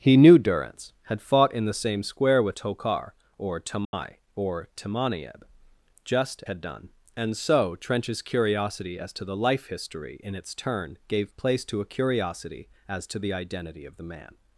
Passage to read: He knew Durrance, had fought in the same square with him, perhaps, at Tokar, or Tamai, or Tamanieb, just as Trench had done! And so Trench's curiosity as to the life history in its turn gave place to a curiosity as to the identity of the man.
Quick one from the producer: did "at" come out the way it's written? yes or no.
no